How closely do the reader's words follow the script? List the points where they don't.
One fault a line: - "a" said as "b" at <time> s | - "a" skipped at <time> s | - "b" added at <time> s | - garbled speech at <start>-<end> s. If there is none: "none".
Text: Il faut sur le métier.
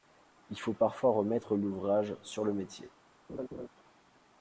- "parfois remettre l'ouvrage" added at 0.7 s